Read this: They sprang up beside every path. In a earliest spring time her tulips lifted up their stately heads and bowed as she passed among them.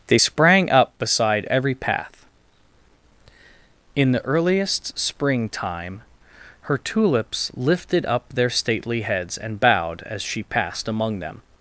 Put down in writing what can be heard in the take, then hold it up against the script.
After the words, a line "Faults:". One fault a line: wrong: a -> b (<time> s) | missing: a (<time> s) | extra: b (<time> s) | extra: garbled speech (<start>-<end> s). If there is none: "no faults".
They sprang up beside every path. In the earliest spring time her tulips lifted up their stately heads and bowed as she passed among them.
Faults:
wrong: a -> the (4.1 s)